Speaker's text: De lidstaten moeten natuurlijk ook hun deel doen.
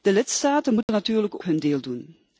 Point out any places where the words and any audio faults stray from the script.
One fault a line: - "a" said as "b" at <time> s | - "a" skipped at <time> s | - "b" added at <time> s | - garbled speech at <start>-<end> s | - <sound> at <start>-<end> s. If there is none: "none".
- dropout at 0.8-0.9 s
- "ook" skipped at 1.4 s